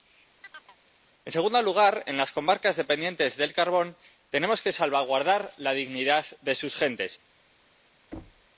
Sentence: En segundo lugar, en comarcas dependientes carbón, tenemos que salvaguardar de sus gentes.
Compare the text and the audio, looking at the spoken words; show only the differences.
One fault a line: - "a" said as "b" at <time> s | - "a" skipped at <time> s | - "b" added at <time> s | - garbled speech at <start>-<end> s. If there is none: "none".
- "las" added at 2.2 s
- "del" added at 3.4 s
- "la dignidad" added at 5.6 s